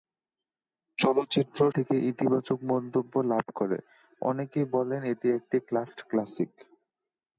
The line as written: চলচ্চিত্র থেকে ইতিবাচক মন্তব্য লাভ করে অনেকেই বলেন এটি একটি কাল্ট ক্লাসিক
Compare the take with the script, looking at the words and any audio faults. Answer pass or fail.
pass